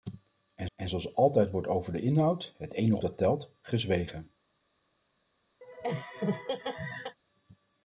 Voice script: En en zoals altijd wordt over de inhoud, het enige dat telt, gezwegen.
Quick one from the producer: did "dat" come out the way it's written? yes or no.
yes